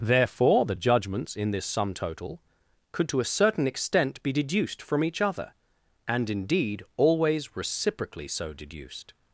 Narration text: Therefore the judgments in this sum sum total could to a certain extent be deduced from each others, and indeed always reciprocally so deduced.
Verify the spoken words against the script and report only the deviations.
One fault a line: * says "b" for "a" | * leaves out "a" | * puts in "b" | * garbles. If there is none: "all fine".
* leaves out "sum"
* says "other" for "others"